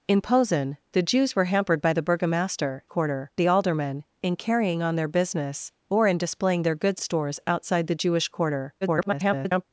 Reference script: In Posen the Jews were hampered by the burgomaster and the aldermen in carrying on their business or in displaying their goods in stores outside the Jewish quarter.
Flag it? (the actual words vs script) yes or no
yes